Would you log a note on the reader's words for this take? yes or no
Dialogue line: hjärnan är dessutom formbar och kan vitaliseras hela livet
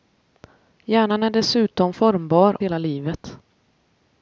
yes